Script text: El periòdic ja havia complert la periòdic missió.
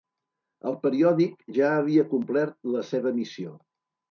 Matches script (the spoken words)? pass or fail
fail